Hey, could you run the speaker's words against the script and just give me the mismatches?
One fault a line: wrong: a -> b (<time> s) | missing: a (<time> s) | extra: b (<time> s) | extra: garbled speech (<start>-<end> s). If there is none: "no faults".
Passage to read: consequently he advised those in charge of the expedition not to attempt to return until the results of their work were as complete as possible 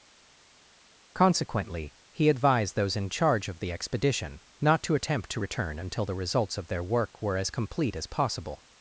no faults